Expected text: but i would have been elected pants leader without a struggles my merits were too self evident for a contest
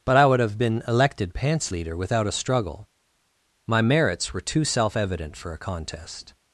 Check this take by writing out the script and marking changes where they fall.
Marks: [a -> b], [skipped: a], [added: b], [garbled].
but i would have been elected pants leader without a [struggles -> struggle] my merits were too self evident for a contest